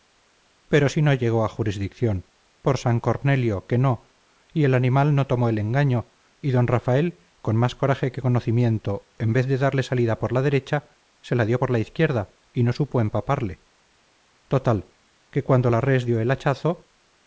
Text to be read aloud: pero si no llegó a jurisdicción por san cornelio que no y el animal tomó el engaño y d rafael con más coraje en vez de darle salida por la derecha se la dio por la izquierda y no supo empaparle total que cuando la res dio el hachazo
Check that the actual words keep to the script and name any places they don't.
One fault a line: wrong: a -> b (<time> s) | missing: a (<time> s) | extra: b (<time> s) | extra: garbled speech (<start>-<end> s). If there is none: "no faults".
extra: no (5.2 s)
extra: que conocimiento (8.1 s)